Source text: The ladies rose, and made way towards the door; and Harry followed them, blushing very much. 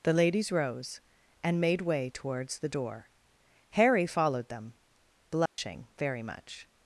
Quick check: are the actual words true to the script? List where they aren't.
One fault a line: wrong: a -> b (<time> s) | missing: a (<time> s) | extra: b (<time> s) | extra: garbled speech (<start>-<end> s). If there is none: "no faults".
missing: and (3.1 s)